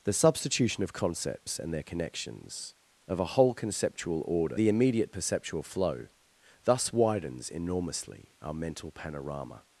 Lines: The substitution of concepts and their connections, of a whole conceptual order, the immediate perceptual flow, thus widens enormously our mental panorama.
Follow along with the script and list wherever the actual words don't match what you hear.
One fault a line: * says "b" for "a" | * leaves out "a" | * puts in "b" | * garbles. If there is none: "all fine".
all fine